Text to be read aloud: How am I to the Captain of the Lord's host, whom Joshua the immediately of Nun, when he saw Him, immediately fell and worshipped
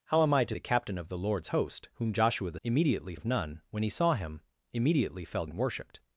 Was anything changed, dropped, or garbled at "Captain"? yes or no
no